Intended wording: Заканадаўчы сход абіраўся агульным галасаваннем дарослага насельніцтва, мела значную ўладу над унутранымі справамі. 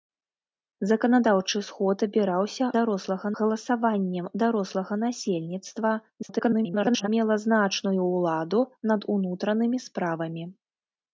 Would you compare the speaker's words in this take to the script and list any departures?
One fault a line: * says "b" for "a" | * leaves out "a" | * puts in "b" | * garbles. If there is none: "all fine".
* says "дарослага" for "агульным"
* garbles